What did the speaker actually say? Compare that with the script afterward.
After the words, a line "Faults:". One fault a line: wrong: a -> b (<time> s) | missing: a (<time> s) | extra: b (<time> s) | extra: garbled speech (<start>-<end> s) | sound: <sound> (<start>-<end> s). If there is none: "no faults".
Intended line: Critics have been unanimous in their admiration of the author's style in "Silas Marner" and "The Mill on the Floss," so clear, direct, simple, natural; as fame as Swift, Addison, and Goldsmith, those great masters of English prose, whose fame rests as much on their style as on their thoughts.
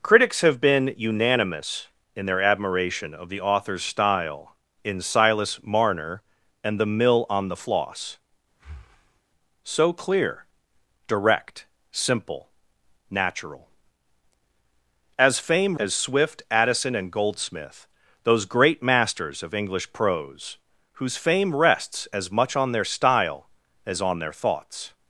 Critics have been unanimous in their admiration of the author's style in "Silas Marner" and "The Mill on the Floss," so clear, direct, simple, natural; as fame as Swift, Addison, and Goldsmith, those great masters of English prose, whose fame rests as much on their style as on their thoughts.
Faults:
sound: breath (8.5-9.2 s)